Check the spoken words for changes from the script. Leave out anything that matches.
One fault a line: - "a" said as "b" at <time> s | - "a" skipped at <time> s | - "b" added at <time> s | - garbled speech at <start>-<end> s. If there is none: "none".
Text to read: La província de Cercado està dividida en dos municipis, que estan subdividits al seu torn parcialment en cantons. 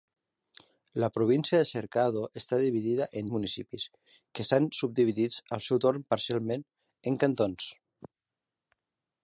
- "dos" skipped at 3.3 s